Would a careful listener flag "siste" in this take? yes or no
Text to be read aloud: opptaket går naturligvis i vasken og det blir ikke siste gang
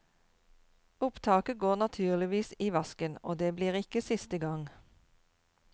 no